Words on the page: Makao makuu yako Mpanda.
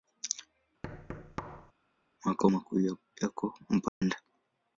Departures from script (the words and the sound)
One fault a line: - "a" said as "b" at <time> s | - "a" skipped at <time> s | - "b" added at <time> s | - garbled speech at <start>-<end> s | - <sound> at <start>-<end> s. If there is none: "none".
- thud at 0.8-1.7 s
- dropout at 3.9-4.0 s